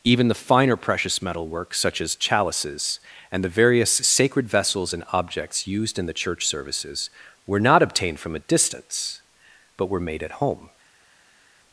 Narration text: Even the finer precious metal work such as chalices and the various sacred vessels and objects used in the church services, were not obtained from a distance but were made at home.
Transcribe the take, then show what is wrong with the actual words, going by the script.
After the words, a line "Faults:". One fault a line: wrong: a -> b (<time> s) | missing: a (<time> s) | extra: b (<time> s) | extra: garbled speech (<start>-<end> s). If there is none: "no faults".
Even the finer precious metal work such as chalices and the various sacred vessels and objects used in the church services, were not obtained from a distance but were made at home.
Faults:
no faults